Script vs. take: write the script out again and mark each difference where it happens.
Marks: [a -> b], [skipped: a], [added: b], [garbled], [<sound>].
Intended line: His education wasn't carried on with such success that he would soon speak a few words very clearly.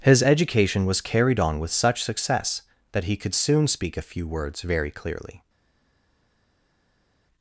His education [wasn't -> was] carried on with such success that he [would -> could] soon speak a few words very clearly.